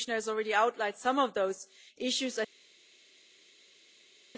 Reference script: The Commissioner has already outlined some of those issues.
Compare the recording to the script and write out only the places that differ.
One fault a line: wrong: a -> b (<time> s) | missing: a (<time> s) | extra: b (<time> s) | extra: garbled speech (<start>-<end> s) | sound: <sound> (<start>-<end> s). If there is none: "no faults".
no faults